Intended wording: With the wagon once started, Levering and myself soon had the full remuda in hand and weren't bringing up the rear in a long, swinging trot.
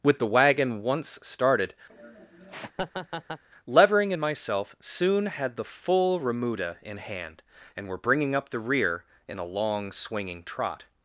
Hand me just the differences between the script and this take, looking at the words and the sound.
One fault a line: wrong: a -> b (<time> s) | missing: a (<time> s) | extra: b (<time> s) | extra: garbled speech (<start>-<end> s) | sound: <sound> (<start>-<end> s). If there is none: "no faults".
sound: laugh (1.9-3.4 s)
wrong: weren't -> were (7.9 s)